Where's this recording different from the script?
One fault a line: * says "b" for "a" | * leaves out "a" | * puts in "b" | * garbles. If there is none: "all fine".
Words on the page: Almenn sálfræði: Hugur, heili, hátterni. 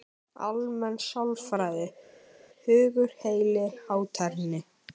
all fine